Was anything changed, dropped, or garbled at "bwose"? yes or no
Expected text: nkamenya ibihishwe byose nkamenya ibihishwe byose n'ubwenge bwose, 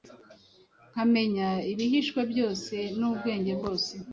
no